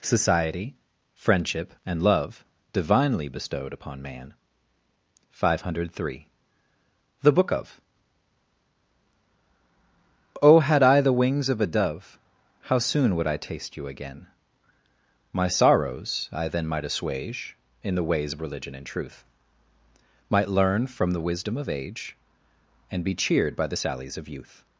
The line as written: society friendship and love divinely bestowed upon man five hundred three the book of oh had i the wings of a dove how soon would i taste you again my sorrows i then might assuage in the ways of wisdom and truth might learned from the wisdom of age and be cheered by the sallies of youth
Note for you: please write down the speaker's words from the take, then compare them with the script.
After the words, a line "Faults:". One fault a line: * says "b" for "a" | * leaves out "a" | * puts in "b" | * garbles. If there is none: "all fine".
society friendship and love divinely bestowed upon man five hundred three the book of oh had i the wings of a dove how soon would i taste you again my sorrows i then might assuage in the ways of religion and truth might learn from the wisdom of age and be cheered by the sallies of youth
Faults:
* says "religion" for "wisdom"
* says "learn" for "learned"